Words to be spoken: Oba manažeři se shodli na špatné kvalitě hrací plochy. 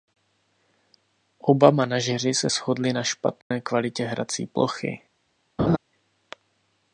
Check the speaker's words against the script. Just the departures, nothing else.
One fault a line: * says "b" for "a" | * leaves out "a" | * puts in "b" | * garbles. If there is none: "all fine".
all fine